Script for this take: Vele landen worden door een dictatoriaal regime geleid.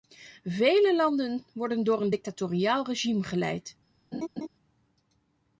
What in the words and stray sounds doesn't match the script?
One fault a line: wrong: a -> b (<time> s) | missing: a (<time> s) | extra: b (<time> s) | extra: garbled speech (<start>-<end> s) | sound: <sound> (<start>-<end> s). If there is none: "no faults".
sound: laugh (4.1-4.5 s)